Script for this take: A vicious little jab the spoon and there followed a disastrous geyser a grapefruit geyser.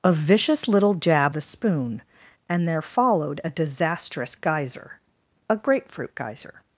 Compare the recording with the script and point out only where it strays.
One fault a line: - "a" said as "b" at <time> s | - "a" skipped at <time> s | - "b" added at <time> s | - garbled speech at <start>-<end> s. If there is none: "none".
none